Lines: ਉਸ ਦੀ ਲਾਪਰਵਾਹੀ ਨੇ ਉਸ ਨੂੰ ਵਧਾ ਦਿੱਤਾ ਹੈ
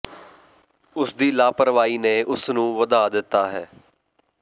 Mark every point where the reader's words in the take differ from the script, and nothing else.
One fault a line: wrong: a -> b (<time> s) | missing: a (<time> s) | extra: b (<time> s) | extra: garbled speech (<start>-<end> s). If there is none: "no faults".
no faults